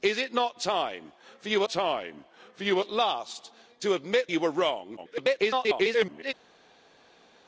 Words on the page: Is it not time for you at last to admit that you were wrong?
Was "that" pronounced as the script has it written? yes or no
no